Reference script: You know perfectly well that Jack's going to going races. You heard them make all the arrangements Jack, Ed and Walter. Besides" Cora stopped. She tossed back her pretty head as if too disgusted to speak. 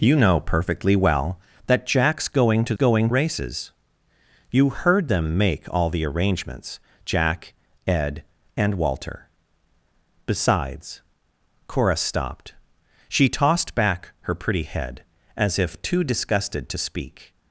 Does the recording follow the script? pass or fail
pass